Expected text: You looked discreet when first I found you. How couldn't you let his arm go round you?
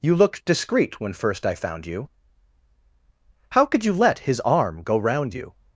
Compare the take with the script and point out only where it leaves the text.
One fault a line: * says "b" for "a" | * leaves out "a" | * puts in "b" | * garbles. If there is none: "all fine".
* says "could" for "couldn't"